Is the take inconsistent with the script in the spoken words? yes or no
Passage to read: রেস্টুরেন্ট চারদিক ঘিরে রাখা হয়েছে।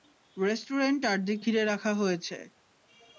no